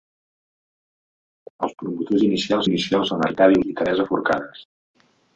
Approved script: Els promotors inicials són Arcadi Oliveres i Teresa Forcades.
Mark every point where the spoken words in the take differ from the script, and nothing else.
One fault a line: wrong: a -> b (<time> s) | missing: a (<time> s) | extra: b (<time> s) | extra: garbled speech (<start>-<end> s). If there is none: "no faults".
extra: inicials (2.7 s)
missing: Oliveres (3.6 s)